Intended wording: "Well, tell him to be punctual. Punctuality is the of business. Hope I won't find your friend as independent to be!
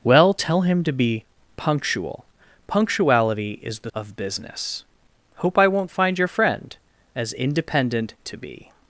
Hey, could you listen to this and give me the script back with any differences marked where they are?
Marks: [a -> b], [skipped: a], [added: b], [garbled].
"Well, tell him to be punctual. Punctuality is the of business. Hope I won't find your friend as independent to be!